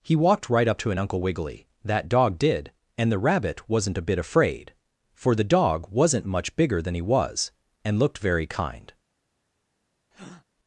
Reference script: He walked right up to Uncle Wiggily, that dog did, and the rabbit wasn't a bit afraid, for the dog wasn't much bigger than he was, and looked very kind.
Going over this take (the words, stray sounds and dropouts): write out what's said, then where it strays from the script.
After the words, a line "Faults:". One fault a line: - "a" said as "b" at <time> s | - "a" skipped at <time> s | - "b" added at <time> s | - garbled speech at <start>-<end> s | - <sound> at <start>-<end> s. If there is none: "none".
He walked right up to an Uncle Wiggily, that dog did, and the rabbit wasn't a bit afraid, for the dog wasn't much bigger than he was, and looked very kind.
Faults:
- "an" added at 0.9 s
- breath at 10.1-10.4 s